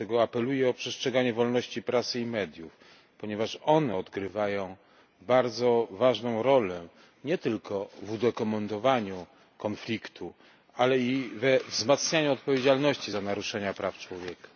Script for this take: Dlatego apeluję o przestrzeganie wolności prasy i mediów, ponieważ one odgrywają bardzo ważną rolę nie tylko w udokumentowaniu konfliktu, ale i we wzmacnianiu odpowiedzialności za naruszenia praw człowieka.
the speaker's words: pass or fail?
pass